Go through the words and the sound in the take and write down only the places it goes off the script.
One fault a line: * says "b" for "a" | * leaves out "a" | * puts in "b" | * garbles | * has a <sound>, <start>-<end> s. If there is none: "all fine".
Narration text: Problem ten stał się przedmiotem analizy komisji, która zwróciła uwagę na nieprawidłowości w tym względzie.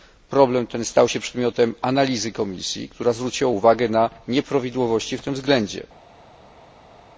all fine